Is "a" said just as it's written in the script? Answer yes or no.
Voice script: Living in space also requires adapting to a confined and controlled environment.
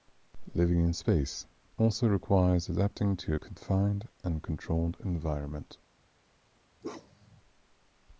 yes